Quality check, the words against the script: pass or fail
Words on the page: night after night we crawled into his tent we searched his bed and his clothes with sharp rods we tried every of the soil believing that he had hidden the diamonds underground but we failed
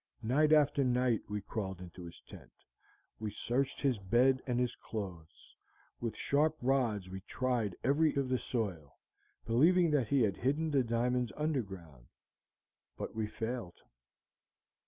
pass